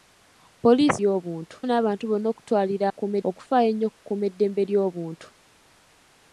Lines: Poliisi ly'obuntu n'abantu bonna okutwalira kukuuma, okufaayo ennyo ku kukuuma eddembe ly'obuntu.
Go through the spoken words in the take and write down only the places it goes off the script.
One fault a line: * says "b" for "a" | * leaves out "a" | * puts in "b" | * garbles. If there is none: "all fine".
all fine